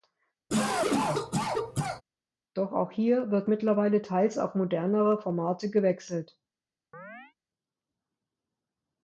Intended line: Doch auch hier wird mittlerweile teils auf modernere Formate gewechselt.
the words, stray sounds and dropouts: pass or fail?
fail